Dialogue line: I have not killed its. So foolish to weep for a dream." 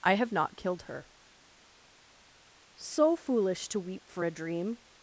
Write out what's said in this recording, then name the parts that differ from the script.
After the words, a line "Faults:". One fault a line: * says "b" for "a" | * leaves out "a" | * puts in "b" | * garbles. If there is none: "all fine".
I have not killed her. So foolish to weep for a dream."
Faults:
* says "her" for "its"